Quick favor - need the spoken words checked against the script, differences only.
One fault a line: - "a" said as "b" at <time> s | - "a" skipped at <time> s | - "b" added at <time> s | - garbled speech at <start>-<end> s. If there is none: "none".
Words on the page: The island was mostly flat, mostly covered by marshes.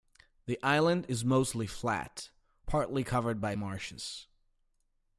- "was" said as "is" at 1.1 s
- "mostly" said as "partly" at 2.7 s